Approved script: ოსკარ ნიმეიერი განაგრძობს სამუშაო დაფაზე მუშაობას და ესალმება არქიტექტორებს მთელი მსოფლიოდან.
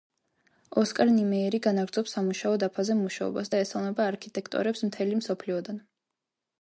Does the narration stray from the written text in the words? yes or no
no